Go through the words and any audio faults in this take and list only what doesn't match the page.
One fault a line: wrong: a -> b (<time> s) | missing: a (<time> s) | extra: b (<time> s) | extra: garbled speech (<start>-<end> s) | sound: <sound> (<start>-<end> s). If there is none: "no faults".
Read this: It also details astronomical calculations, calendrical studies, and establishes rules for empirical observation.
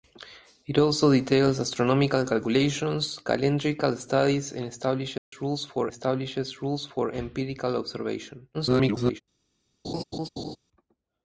sound: dropout (5.2-5.3 s)
extra: establishes rules for (5.9 s)
extra: garbled speech (8.5-9.2 s)
sound: laugh (9.8-10.6 s)